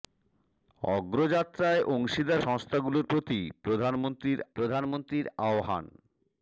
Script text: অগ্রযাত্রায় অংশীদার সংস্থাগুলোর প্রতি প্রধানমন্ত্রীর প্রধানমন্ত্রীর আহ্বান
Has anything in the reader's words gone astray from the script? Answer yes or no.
no